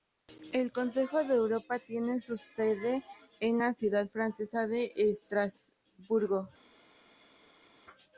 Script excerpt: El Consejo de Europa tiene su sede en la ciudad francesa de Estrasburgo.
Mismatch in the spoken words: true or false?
false